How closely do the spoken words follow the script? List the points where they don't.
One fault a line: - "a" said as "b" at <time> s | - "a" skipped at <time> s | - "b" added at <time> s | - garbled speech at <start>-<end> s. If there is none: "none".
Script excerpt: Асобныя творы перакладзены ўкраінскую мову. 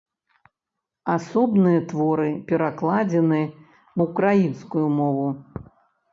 none